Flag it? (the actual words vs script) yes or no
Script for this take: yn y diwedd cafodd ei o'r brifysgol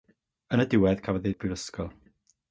no